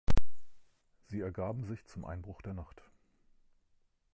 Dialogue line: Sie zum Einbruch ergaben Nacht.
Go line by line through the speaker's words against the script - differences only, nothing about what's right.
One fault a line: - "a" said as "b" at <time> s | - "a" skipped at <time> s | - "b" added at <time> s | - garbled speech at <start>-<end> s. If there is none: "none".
- "ergaben sich" added at 1.2 s
- "ergaben" said as "der" at 2.4 s